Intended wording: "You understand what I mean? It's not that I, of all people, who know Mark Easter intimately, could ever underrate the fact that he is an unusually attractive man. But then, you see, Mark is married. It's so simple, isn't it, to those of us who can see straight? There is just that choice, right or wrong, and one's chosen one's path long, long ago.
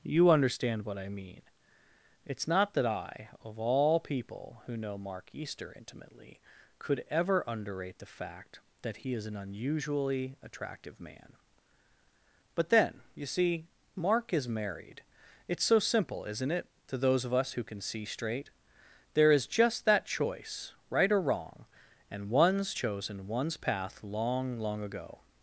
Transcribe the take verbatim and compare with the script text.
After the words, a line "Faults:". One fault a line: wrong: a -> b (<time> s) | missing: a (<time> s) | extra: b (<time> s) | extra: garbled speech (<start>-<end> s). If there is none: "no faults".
"You understand what I mean? It's not that I, of all people, who know Mark Easter intimately, could ever underrate the fact that he is an unusually attractive man. But then, you see, Mark is married. It's so simple, isn't it, to those of us who can see straight? There is just that choice, right or wrong, and one's chosen one's path long, long ago.
Faults:
no faults